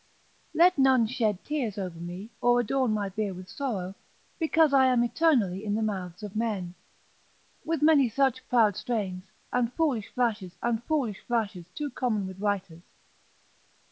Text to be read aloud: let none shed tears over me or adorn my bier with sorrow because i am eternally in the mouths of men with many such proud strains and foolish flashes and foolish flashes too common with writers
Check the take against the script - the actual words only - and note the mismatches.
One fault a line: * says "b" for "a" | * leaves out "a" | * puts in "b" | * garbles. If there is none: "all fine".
all fine